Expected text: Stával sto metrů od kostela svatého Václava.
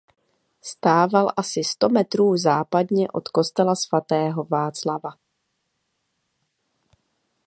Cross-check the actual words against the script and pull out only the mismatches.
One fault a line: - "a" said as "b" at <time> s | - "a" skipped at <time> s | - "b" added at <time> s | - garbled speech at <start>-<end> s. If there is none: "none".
- "asi" added at 1.4 s
- "západně" added at 2.4 s